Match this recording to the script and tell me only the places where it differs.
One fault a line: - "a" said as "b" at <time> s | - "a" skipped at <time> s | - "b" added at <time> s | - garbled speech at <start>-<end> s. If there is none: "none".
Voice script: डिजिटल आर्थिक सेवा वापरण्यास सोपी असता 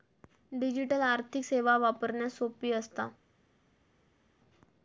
none